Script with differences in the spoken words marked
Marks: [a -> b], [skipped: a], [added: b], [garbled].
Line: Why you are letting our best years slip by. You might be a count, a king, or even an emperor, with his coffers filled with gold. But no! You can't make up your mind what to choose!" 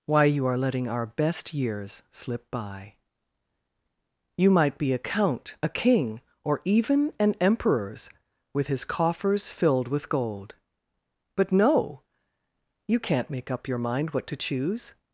Why you are letting our best years slip by. You might be a count, a king, or even an [emperor, -> emperors] with his coffers filled with gold. But no! You can't make up your mind what to choose!"